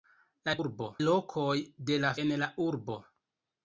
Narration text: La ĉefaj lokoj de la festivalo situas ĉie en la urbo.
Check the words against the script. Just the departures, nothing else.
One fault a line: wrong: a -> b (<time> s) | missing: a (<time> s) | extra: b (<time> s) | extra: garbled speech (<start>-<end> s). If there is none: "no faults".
wrong: ĉefaj -> urbo (0.6 s)
missing: festivalo situas ĉie (2.1 s)